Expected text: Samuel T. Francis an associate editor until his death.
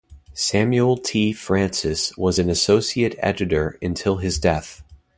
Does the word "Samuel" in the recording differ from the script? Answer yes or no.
no